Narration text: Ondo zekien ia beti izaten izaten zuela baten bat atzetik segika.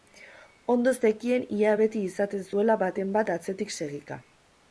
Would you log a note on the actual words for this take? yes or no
yes